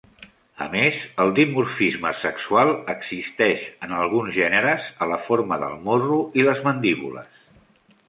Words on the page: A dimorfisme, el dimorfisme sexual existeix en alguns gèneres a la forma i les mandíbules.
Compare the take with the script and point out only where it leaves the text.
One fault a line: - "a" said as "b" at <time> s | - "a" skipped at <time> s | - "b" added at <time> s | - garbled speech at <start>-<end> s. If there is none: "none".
- "dimorfisme" said as "més" at 0.8 s
- "del morro" added at 5.7 s